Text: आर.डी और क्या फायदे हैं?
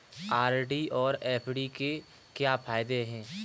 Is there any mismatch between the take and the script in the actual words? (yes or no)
yes